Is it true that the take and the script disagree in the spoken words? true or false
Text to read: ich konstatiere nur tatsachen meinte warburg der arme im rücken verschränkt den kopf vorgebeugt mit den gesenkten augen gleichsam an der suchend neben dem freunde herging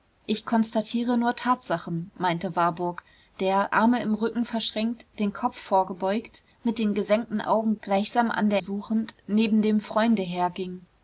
false